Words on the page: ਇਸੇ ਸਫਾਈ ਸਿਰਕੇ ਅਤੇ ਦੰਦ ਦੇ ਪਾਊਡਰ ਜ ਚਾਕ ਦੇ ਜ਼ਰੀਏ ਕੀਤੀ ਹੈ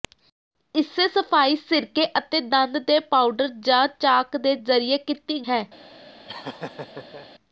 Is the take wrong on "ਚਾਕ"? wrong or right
right